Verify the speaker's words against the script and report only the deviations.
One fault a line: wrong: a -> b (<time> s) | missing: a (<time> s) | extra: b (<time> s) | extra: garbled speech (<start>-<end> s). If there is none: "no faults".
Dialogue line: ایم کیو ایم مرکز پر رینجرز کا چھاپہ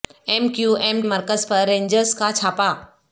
no faults